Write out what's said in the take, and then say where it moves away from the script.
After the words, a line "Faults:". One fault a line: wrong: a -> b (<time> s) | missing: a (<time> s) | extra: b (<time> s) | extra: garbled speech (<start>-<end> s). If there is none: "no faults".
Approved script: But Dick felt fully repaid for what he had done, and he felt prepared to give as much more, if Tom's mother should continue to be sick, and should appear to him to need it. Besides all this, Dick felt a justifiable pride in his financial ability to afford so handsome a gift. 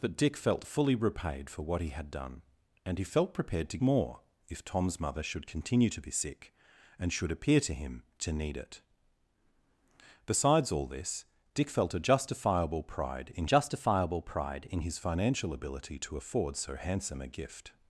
But Dick felt fully repaid for what he had done, and he felt prepared to more, if Tom's mother should continue to be sick, and should appear to him to need it. Besides all this, Dick felt a justifiable pride in justifiable pride in his financial ability to afford so handsome a gift.
Faults:
missing: give as much (3.8 s)
extra: justifiable pride in (13.4 s)